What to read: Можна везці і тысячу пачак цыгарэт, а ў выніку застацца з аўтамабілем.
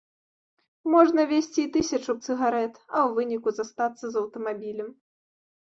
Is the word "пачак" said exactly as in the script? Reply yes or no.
no